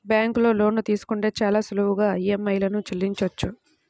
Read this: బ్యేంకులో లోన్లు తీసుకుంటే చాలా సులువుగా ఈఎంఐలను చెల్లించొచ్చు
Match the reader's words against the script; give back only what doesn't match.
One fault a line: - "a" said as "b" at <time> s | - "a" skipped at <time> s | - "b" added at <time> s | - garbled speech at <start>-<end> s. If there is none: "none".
none